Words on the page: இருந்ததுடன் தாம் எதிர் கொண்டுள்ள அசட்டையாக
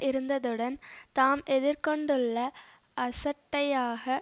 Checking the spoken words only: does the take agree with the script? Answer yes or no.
yes